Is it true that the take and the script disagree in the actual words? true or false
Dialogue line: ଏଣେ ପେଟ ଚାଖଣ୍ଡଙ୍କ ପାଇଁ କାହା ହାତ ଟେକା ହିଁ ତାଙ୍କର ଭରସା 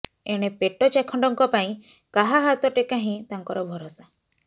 false